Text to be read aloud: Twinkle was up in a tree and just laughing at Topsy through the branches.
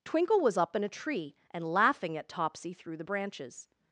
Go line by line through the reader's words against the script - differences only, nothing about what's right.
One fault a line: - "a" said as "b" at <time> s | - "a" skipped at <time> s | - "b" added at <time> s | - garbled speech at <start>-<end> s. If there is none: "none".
- "just" skipped at 1.6 s